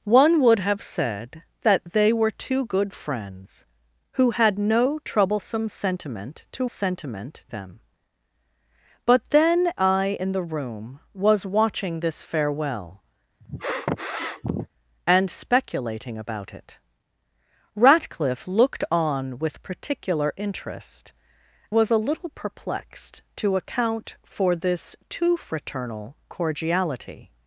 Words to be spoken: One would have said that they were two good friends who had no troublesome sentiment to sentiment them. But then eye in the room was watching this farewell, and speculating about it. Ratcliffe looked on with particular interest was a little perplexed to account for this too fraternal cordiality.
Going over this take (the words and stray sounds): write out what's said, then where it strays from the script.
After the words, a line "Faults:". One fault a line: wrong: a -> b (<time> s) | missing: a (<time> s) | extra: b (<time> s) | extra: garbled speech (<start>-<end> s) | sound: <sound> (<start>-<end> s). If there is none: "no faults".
One would have said that they were two good friends who had no troublesome sentiment to sentiment them. But then eye in the room was watching this farewell, and speculating about it. Ratcliffe looked on with particular interest was a little perplexed to account for this too fraternal cordiality.
Faults:
sound: sniff (13.4-14.7 s)